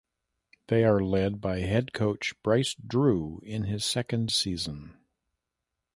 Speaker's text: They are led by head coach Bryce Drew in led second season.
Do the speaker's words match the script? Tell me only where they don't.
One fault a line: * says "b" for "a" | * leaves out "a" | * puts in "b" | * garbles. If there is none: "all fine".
* says "his" for "led"